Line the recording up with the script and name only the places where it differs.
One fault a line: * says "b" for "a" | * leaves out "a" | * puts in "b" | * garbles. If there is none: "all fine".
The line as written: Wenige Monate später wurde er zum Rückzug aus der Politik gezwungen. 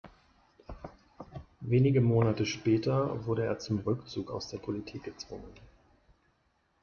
all fine